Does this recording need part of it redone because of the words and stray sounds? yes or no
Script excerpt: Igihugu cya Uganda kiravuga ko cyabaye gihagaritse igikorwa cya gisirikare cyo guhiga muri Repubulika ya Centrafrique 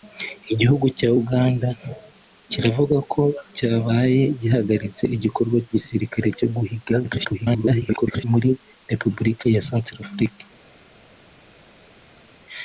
yes